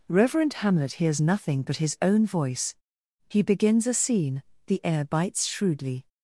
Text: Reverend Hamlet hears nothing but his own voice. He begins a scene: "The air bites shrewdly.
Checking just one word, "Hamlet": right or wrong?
right